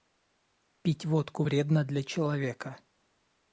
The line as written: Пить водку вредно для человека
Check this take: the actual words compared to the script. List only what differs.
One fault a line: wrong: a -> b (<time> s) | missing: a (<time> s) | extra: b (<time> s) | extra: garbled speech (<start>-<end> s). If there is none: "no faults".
no faults